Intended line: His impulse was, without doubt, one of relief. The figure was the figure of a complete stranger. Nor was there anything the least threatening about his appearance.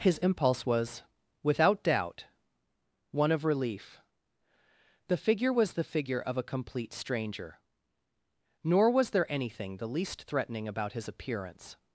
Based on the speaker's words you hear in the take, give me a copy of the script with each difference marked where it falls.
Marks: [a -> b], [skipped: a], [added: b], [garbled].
His impulse was, without doubt, one of relief. The figure was the figure of a complete stranger. Nor was there anything the least threatening about his appearance.